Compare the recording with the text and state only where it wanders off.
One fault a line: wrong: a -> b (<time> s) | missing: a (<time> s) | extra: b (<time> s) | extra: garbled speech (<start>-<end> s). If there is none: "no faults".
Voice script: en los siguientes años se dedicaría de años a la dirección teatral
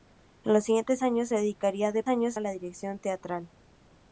no faults